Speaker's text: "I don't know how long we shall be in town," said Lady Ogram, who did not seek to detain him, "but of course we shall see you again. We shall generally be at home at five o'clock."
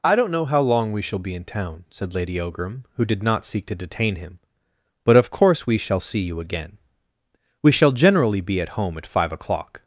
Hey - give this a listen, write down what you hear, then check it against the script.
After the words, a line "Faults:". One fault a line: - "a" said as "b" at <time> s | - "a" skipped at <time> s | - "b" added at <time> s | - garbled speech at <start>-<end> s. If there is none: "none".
"I don't know how long we shall be in town," said Lady Ogram, who did not seek to detain him, "but of course we shall see you again. We shall generally be at home at five o'clock."
Faults:
none